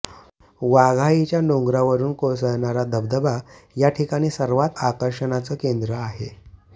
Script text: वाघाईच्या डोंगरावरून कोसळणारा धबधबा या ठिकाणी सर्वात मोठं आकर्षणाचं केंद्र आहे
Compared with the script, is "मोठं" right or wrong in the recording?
wrong